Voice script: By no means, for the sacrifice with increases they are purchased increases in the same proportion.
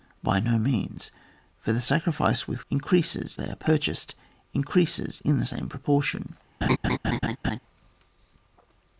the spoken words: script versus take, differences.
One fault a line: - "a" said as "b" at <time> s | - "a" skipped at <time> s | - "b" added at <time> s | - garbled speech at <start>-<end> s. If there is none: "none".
none